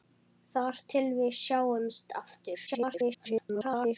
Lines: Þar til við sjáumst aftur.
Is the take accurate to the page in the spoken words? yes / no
no